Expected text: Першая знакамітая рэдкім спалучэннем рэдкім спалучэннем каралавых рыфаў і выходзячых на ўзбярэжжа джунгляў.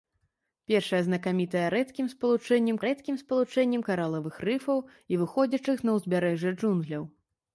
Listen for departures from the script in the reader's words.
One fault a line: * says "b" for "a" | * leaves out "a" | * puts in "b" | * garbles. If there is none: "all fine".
all fine